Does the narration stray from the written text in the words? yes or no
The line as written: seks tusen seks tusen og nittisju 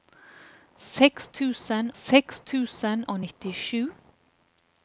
no